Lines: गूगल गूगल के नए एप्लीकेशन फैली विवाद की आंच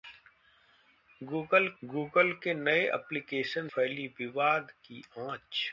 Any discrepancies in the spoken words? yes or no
no